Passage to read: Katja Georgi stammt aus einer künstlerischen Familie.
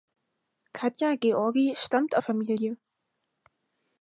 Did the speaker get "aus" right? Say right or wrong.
wrong